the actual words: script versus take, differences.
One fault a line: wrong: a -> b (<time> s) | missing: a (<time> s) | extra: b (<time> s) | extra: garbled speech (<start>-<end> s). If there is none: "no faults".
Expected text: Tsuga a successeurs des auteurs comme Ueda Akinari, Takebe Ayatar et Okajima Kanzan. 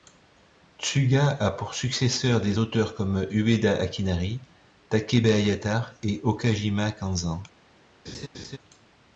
extra: pour (1.5 s)